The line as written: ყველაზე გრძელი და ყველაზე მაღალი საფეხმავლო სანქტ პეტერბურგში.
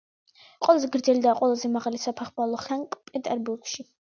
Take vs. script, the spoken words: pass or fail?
pass